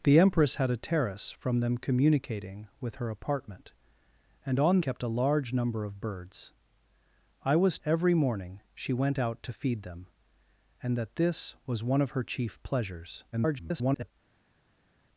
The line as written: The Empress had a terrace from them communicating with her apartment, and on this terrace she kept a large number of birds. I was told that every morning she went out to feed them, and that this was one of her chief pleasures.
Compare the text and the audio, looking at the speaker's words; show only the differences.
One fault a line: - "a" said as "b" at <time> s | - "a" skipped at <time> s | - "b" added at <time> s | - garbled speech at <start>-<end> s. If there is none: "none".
- "this terrace she" skipped at 4.8 s
- "told that" skipped at 7.8 s
- garbled speech at 13.3-14.1 s